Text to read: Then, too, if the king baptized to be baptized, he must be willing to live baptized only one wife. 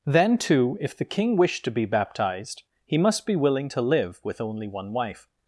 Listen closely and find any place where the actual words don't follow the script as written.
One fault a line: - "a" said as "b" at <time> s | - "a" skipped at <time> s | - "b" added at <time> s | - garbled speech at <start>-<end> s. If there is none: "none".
- "baptized" said as "wished" at 1.4 s
- "baptized" said as "with" at 4.2 s